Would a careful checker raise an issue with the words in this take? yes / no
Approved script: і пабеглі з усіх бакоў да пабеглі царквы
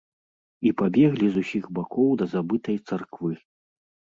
yes